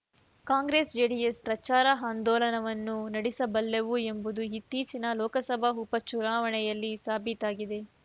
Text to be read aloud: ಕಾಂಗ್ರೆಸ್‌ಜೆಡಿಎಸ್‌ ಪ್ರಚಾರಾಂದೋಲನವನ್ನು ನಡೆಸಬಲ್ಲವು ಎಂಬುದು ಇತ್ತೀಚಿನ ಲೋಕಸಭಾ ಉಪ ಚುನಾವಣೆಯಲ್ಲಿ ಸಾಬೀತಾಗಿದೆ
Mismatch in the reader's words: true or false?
false